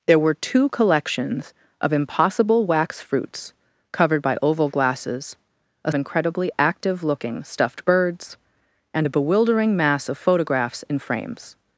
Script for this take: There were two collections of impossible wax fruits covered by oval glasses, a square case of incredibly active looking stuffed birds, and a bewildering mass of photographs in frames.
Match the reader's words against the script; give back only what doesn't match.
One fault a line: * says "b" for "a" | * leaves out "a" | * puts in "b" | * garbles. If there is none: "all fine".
* leaves out "square case of"